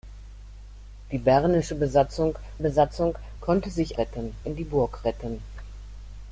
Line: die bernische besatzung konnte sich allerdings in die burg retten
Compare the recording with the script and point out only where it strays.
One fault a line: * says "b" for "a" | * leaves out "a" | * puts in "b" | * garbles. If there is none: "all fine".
* puts in "besatzung"
* says "retten" for "allerdings"